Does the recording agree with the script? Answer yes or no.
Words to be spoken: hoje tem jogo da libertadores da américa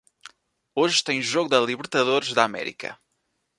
yes